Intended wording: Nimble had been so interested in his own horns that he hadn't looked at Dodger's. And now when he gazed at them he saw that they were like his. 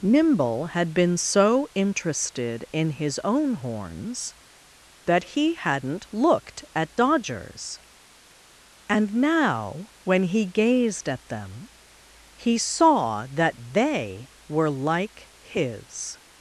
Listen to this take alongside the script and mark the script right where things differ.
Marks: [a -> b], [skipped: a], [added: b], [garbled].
Nimble had been so interested in his own horns that he hadn't looked at Dodger's. And now when he gazed at them he saw that they were like his.